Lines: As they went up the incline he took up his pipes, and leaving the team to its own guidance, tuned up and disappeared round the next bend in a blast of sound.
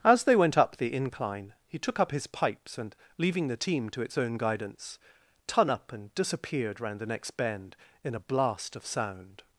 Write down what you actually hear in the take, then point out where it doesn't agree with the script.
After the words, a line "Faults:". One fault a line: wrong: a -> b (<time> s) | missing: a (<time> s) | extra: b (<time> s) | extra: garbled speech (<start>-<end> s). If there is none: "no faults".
As they went up the incline he took up his pipes, and leaving the team to its own guidance, tun up and disappeared round the next bend in a blast of sound.
Faults:
wrong: tuned -> tun (5.5 s)